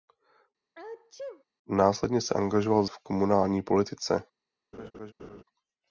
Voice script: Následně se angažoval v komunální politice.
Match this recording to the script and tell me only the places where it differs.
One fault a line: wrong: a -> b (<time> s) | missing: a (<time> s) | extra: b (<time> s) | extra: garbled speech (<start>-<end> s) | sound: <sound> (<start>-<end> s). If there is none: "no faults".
sound: sneeze (0.7-1.4 s)
sound: laugh (4.7-5.4 s)